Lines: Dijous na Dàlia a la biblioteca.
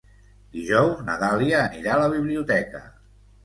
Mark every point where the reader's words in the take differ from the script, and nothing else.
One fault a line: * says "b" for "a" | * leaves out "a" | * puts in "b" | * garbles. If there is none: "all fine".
* puts in "anirà"